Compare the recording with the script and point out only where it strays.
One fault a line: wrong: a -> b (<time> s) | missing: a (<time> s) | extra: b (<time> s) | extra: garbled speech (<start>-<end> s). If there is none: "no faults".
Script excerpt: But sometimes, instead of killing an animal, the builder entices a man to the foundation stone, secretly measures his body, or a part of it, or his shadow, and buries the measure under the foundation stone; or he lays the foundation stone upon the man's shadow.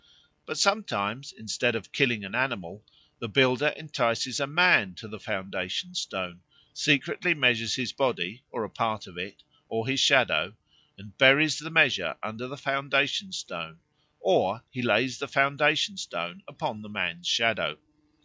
no faults